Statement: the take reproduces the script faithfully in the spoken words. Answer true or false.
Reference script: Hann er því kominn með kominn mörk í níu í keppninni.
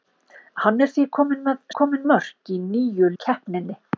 true